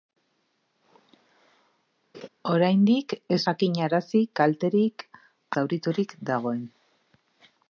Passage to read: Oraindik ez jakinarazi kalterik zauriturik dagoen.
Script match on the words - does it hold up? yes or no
yes